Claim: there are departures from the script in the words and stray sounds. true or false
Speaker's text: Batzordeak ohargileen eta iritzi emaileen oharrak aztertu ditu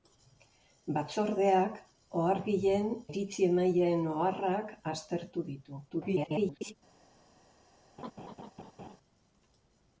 true